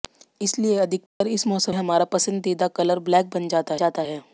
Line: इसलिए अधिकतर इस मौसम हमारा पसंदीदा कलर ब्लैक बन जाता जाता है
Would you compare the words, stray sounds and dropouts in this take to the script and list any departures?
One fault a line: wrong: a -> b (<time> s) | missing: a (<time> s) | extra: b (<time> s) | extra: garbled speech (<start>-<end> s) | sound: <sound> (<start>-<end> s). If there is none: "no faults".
sound: dropout (1.1-1.2 s)